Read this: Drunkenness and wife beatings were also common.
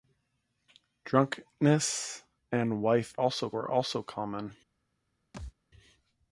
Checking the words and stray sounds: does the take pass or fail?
fail